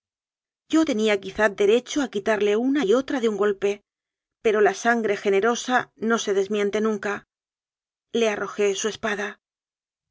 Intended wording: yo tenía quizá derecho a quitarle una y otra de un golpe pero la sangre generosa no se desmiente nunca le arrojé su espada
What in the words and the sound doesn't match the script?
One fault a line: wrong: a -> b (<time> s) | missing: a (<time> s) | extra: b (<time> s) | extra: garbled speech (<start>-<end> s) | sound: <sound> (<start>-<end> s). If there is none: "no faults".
no faults